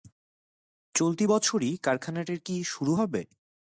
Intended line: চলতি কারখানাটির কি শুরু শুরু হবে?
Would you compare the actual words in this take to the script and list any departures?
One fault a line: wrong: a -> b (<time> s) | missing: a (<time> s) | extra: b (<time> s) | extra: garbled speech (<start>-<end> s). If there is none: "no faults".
extra: বছরই (1.3 s)
missing: শুরু (2.9 s)